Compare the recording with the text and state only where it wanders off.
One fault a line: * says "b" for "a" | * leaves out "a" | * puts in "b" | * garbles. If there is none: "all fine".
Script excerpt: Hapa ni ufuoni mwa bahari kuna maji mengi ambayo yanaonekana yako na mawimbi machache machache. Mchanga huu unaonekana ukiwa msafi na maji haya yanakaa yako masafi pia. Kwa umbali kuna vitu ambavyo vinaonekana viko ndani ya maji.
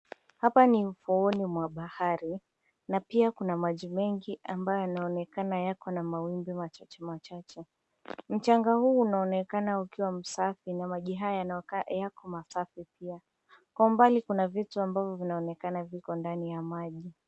* puts in "na pia"